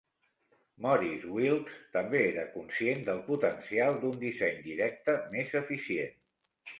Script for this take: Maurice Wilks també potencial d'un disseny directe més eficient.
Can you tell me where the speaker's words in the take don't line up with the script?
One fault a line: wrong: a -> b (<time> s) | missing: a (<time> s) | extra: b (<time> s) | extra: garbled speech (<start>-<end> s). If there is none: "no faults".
extra: era conscient del (2.3 s)